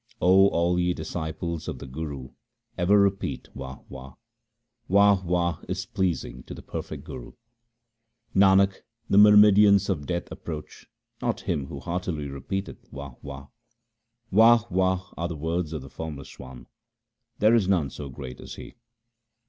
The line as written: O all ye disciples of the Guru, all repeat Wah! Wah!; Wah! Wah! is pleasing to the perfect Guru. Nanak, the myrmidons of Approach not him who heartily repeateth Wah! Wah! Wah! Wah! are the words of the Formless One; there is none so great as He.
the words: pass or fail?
fail